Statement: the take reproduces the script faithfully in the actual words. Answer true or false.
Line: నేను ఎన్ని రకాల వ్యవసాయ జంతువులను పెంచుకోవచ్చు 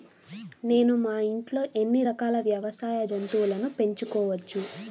false